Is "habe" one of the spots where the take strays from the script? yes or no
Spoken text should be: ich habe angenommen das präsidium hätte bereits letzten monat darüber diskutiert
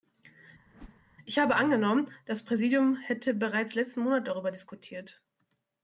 no